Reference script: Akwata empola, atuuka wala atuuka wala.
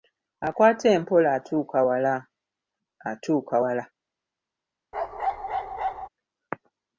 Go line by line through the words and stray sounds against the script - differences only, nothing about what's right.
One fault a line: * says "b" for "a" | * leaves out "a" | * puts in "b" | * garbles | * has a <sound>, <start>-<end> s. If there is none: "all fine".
* has a bark, 4.9-6.1 s